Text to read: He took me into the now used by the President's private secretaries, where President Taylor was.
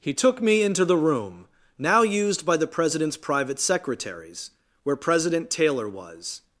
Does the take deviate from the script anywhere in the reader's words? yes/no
yes